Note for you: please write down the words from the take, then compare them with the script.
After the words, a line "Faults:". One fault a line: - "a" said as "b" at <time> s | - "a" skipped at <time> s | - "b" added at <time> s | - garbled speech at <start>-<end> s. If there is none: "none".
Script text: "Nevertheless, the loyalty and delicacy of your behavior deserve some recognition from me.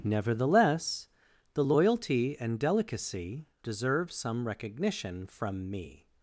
"Nevertheless, the loyalty and delicacy deserve some recognition from me.
Faults:
- "of your behavior" skipped at 3.5 s